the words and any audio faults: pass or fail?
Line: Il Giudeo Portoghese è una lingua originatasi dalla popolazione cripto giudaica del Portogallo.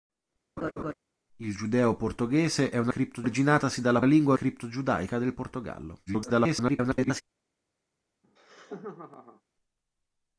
fail